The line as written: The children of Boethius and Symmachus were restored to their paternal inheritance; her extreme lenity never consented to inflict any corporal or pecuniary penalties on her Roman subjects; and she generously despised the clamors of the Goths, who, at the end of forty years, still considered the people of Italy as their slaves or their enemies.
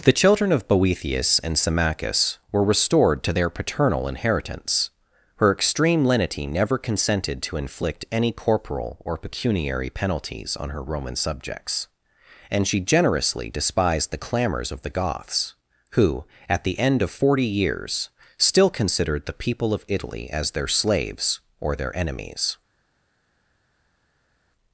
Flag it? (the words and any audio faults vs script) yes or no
no